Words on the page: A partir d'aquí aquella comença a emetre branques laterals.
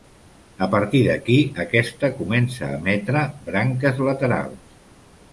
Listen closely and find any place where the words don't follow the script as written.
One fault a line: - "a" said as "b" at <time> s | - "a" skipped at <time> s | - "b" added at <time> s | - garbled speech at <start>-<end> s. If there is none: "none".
- "aquella" said as "aquesta" at 1.6 s